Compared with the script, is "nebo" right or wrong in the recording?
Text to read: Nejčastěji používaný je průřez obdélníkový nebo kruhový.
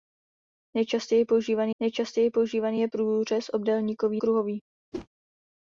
wrong